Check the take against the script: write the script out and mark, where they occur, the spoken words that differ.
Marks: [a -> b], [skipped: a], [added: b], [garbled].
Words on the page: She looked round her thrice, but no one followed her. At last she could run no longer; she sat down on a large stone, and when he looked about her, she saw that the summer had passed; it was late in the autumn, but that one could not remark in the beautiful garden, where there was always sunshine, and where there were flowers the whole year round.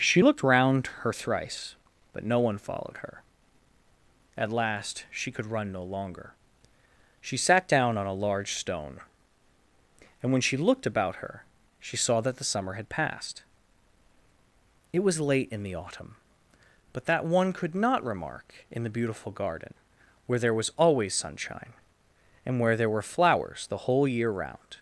She looked round her thrice, but no one followed her. At last she could run no longer; she sat down on a large stone, and when [he -> she] looked about her, she saw that the summer had passed; it was late in the autumn, but that one could not remark in the beautiful garden, where there was always sunshine, and where there were flowers the whole year round.